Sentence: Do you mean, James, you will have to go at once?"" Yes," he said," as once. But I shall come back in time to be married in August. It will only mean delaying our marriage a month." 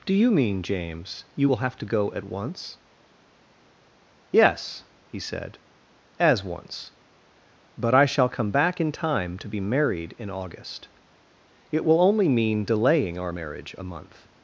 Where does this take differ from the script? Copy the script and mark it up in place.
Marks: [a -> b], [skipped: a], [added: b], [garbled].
Do you mean, James, you will have to go at once?"" Yes," he said," as once. But I shall come back in time to be married in August. It will only mean delaying our marriage a month."